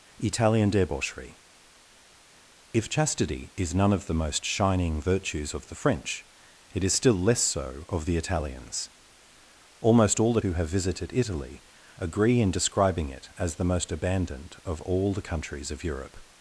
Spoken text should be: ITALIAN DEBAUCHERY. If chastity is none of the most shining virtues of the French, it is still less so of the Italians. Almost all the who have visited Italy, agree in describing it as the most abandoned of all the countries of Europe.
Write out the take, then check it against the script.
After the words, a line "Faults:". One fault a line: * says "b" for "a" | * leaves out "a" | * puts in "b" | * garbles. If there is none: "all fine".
ITALIAN DEBAUCHERY. If chastity is none of the most shining virtues of the French, it is still less so of the Italians. Almost all the who have visited Italy, agree in describing it as the most abandoned of all the countries of Europe.
Faults:
all fine